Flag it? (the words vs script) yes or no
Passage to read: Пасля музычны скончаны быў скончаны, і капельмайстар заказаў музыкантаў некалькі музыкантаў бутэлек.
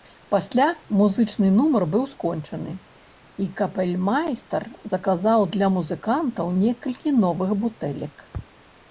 yes